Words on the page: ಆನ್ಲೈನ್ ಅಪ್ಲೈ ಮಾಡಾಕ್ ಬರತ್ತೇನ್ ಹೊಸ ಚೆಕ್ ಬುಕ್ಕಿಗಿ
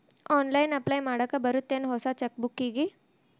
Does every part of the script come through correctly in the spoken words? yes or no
yes